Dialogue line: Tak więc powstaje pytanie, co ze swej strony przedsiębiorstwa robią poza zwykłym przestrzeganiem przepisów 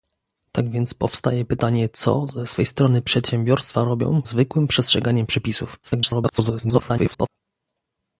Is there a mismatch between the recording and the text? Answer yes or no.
yes